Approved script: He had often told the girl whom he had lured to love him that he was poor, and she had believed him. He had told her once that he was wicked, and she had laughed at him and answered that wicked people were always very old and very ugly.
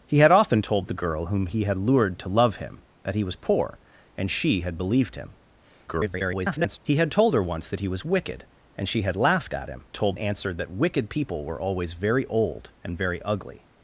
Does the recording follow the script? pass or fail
fail